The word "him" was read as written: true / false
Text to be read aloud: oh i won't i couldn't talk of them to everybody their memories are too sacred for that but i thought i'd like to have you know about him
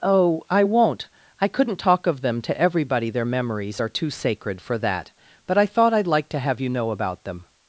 false